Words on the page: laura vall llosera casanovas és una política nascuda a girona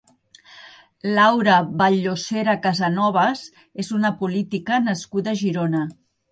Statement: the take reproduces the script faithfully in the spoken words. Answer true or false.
true